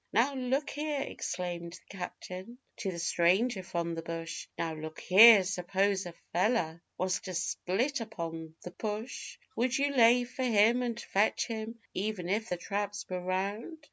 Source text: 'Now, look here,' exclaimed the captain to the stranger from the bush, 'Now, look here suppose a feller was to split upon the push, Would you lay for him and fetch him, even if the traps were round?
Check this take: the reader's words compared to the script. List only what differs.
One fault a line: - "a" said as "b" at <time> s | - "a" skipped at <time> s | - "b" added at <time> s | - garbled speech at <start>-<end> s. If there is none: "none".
none